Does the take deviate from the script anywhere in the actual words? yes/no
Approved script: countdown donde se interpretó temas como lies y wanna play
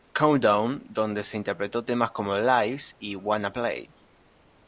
no